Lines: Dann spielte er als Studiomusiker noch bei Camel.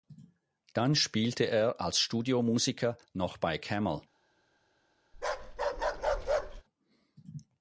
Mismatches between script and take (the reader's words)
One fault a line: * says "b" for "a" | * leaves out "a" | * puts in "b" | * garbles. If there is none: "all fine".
all fine